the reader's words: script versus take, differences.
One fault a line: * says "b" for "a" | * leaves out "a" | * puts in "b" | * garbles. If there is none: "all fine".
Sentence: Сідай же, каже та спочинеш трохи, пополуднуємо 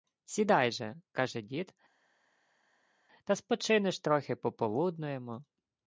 * puts in "дід"